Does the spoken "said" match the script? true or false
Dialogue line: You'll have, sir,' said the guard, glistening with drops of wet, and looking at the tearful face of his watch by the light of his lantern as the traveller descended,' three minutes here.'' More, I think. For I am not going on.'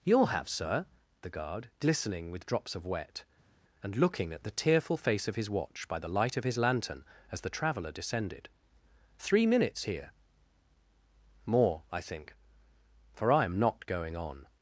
false